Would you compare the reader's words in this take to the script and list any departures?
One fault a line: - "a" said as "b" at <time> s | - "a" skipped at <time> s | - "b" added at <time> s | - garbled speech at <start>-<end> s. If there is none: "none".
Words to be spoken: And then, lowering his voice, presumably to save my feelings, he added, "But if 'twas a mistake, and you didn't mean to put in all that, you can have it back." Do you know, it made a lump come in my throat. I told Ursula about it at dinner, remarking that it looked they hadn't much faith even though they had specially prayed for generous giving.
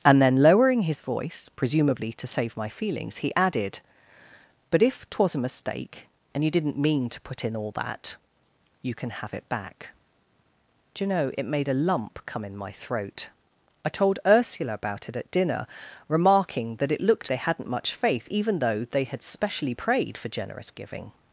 none